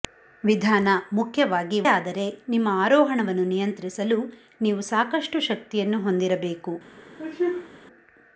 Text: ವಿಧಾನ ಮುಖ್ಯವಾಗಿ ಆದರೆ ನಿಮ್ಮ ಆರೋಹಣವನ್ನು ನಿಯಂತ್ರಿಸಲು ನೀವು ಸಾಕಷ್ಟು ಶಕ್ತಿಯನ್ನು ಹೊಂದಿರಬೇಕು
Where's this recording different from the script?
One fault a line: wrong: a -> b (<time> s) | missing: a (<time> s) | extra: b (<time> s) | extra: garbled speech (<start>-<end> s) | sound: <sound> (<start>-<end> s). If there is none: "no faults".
sound: sneeze (7.2-7.7 s)